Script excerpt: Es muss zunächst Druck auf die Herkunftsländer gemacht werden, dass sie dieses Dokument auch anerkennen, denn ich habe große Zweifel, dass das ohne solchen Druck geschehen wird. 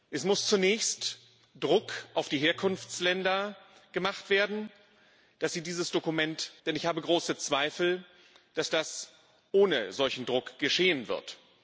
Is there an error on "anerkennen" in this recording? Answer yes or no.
yes